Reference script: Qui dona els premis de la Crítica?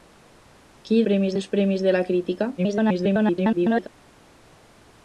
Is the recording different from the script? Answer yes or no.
yes